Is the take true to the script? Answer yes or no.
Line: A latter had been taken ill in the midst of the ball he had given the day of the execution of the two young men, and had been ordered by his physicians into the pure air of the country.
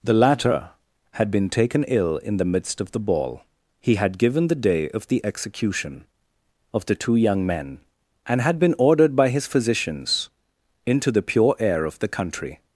no